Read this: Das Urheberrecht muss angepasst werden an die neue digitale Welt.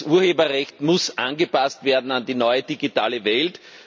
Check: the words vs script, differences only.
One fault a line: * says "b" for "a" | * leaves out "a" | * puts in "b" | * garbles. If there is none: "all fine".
all fine